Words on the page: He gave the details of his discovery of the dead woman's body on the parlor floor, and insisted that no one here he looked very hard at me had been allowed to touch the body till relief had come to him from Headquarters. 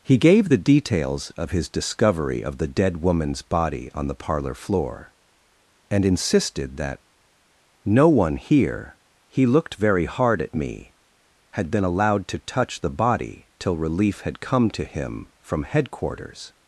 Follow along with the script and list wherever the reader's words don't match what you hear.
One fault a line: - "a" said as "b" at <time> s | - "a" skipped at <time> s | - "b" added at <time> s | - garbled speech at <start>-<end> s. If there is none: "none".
none